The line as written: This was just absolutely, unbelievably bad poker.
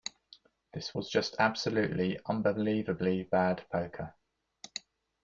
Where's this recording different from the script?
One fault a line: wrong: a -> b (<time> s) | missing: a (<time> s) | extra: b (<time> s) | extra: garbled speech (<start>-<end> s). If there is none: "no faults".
no faults